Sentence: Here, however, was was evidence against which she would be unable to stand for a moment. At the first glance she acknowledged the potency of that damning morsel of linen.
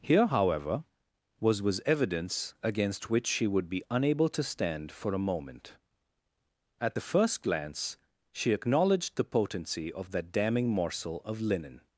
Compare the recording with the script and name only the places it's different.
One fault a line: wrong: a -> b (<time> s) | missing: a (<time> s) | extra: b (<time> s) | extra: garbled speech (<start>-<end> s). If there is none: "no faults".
no faults